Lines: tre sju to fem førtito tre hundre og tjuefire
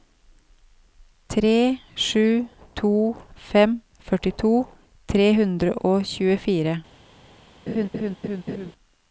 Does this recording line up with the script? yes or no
yes